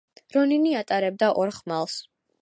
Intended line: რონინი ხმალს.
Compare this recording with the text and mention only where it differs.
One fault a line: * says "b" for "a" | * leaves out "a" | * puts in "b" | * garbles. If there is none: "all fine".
* puts in "ატარებდა ორ"